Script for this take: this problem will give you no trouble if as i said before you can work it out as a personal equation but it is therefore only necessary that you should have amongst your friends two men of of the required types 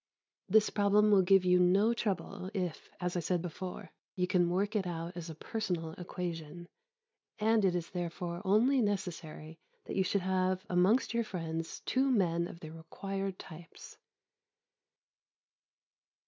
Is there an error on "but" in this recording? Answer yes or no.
yes